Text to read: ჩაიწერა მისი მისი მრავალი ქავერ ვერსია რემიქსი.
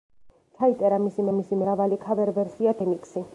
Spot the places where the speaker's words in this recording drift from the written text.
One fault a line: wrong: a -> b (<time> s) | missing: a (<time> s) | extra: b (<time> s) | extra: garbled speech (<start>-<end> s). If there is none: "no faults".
no faults